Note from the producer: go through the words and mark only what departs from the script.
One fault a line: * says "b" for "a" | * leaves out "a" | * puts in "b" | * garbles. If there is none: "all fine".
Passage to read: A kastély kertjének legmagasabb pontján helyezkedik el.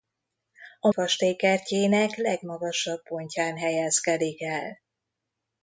all fine